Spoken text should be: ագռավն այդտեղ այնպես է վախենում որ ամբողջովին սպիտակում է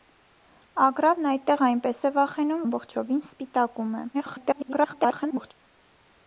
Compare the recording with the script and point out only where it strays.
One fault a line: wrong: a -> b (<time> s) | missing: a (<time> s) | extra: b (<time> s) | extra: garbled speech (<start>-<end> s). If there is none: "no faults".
missing: որ (2.6 s)
extra: garbled speech (4.1-5.5 s)